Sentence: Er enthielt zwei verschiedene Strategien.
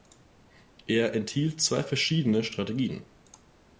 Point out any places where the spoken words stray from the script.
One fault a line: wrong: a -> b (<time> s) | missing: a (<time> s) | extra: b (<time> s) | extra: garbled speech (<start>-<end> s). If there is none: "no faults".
no faults